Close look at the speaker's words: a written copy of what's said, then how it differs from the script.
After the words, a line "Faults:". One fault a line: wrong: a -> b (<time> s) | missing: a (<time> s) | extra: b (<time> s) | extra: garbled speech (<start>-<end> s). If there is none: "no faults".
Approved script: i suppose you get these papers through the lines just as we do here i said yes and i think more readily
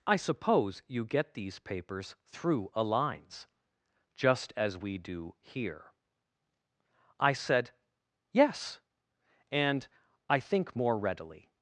i suppose you get these papers through a lines just as we do here i said yes and i think more readily
Faults:
wrong: the -> a (2.7 s)